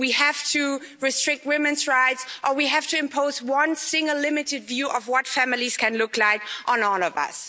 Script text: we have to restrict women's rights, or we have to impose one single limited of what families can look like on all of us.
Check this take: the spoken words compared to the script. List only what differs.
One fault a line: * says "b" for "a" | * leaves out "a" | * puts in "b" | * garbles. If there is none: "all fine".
* puts in "view"